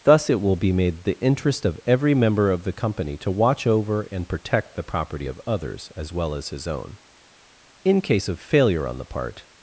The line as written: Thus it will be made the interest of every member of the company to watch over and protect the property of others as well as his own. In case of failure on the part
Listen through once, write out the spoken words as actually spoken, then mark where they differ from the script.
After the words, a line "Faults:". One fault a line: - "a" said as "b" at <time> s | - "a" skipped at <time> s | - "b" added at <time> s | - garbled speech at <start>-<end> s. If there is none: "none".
Thus it will be made the interest of every member of the company to watch over and protect the property of others as well as his own. In case of failure on the part
Faults:
none